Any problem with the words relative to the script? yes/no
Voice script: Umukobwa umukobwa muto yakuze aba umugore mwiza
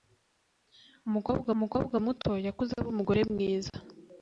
no